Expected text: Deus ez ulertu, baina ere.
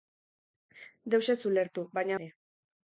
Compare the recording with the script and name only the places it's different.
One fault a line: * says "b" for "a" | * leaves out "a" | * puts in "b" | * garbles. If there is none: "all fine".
all fine